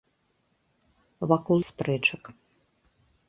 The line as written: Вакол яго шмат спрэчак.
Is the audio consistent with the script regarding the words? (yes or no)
no